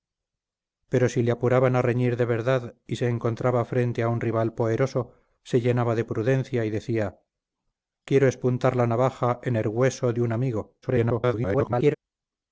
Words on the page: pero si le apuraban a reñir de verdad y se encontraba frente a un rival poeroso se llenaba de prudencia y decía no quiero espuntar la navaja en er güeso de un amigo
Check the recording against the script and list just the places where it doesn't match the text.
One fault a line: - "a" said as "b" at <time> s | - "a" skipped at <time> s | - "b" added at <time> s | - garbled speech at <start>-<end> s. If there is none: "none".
- "no" skipped at 7.2 s
- garbled speech at 10.8-11.9 s